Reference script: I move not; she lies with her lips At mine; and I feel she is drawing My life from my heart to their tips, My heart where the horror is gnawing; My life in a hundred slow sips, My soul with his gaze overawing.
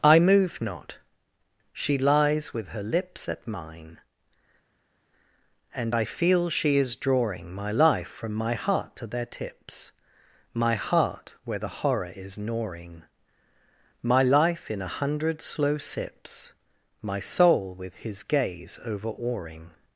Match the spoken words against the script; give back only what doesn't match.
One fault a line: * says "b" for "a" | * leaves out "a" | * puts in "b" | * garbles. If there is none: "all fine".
all fine